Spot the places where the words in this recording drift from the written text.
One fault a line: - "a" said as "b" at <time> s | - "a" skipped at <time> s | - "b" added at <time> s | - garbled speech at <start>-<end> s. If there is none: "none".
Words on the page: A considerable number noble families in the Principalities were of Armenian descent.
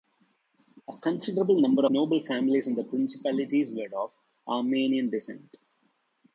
none